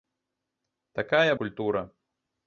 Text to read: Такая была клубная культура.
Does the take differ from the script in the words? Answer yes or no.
yes